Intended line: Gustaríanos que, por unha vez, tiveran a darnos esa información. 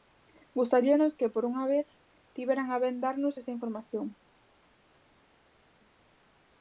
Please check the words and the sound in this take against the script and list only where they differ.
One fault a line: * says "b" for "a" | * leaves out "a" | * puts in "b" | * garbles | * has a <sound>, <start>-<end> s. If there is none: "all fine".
* puts in "ben"